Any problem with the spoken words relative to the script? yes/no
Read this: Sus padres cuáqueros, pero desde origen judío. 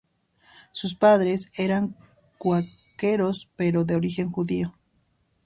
yes